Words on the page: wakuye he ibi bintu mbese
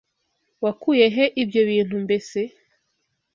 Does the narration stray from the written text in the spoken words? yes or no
yes